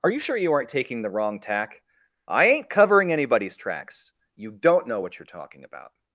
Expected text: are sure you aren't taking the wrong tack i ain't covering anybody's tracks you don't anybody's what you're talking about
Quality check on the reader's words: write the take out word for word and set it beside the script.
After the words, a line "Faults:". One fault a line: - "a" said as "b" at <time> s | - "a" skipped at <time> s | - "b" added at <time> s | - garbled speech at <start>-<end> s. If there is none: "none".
are you sure you aren't taking the wrong tack i ain't covering anybody's tracks you don't know what you're talking about
Faults:
- "you" added at 0.1 s
- "anybody's" said as "know" at 4.9 s